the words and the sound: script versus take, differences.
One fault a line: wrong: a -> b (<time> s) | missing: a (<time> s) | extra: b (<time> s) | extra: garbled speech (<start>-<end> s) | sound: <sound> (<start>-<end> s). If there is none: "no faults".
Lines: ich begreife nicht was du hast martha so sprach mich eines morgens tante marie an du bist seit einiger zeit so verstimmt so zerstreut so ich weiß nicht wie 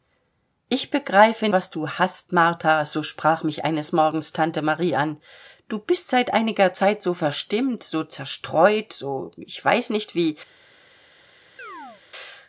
missing: nicht (1.5 s)
sound: chirp (11.6-12.0 s)